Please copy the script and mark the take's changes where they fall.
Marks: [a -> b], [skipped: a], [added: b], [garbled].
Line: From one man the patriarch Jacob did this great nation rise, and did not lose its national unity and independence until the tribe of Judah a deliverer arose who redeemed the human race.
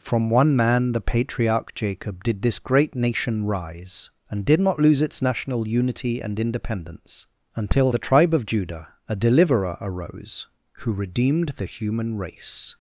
From one man the patriarch Jacob did this great nation rise, and did not lose its national unity and independence until the tribe of Judah a deliverer arose who redeemed the human race.